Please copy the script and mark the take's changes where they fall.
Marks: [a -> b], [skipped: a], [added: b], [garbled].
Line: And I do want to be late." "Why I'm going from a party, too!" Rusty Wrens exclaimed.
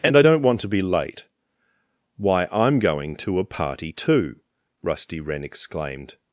And I [do -> don't] want to be late." "Why I'm going [from -> to] a party, too!" Rusty [Wrens -> Wren] exclaimed.